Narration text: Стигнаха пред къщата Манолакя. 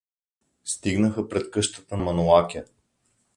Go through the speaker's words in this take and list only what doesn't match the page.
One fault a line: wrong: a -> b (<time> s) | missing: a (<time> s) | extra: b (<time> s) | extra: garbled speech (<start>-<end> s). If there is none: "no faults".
no faults